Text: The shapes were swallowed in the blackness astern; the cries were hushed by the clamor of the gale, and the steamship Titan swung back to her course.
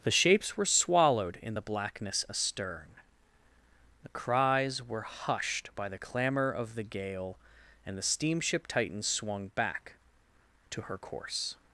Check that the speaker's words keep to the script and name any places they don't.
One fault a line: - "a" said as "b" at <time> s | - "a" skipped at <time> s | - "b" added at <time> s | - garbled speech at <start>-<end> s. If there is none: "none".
none